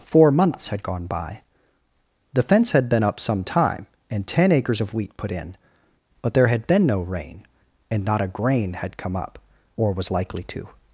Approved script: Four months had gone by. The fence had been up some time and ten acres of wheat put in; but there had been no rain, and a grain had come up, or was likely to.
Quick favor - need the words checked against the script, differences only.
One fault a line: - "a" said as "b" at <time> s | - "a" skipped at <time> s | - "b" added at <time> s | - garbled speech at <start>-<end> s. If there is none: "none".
- "not" added at 8.0 s